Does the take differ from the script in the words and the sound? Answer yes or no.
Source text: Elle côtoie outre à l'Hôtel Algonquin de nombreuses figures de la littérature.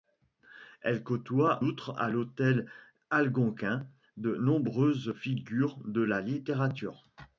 no